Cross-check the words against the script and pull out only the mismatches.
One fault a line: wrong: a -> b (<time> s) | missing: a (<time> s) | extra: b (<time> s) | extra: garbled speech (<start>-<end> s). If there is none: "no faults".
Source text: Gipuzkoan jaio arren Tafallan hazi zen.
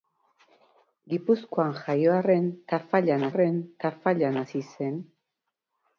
extra: arren Tafallan (3.3 s)